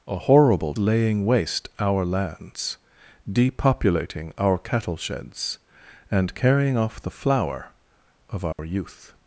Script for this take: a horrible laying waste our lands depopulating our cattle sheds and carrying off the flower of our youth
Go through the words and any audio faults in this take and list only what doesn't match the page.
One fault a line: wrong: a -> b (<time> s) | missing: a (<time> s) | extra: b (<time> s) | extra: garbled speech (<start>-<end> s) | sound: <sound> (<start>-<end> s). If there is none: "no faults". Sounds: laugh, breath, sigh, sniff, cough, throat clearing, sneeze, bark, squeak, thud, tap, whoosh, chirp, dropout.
sound: dropout (8.5-8.6 s)